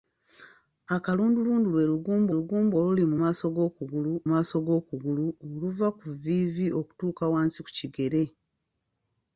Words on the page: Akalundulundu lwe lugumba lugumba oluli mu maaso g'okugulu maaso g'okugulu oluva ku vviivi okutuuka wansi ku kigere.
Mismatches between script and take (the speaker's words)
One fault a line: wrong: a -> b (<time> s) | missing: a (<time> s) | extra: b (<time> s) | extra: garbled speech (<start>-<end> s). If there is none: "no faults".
no faults